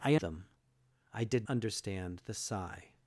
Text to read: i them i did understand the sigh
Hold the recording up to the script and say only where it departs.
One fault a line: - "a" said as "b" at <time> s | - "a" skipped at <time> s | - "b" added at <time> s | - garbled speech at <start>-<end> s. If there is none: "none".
none